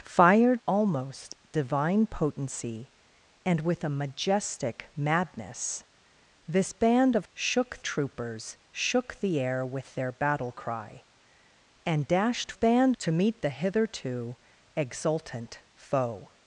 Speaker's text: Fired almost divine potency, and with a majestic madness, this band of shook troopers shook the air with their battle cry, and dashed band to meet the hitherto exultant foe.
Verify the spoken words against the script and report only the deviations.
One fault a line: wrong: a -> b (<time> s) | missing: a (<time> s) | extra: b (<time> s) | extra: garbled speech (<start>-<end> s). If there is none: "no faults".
no faults